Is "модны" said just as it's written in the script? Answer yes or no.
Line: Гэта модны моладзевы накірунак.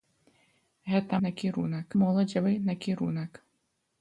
no